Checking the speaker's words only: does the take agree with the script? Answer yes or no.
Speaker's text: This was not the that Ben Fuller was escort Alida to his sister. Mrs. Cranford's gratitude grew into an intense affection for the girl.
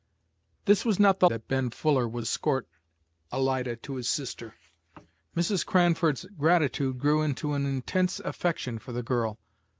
yes